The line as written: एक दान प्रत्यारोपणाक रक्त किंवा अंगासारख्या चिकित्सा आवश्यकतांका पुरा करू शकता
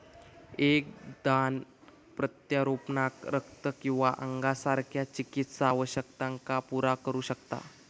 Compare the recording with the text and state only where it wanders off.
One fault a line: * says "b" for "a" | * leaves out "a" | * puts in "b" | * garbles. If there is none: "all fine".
all fine